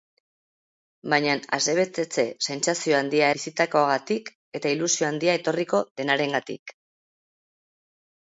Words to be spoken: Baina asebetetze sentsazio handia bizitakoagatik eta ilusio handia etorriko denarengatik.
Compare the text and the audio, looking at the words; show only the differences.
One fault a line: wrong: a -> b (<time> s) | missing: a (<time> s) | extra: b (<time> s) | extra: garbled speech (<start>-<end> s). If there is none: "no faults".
no faults